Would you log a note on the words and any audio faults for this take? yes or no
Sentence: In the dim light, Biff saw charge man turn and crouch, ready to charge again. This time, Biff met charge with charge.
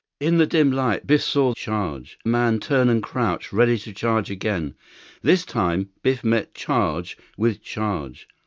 no